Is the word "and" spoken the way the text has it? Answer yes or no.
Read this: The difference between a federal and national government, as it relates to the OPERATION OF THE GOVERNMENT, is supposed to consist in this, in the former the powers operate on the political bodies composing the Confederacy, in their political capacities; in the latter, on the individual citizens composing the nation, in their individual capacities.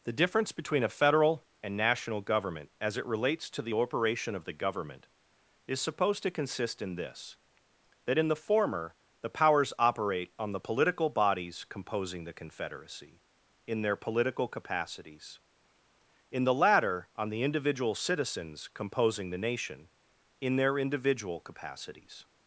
yes